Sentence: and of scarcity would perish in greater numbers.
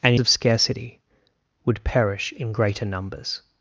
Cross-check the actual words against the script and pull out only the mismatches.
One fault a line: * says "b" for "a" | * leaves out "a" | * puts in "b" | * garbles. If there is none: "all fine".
all fine